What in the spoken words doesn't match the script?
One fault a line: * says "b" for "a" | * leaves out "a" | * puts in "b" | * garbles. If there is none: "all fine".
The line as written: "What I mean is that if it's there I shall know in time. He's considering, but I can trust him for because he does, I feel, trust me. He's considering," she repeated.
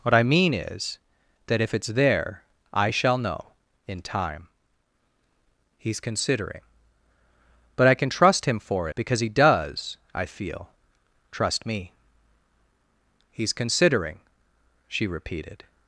all fine